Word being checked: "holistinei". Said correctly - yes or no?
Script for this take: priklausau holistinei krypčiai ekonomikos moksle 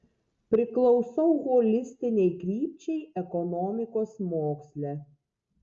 yes